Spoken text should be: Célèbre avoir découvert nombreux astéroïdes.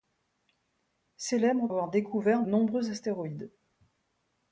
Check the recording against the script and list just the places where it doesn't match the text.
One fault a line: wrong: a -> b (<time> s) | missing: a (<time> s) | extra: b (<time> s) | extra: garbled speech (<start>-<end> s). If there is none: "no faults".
no faults